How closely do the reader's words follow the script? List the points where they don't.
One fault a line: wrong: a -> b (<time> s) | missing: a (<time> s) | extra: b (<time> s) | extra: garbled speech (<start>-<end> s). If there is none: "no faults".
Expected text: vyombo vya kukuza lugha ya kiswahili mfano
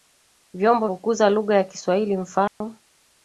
missing: vya (0.9 s)